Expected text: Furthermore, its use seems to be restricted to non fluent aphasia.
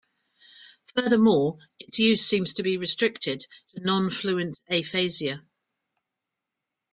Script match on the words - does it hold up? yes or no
yes